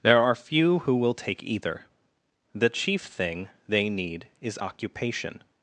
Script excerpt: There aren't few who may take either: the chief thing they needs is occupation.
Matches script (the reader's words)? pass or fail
fail